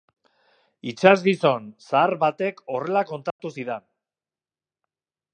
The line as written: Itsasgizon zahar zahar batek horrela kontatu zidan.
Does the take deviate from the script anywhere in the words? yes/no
yes